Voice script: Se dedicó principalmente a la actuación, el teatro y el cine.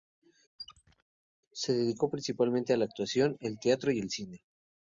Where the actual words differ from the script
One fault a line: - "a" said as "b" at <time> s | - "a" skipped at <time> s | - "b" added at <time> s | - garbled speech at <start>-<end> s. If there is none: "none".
none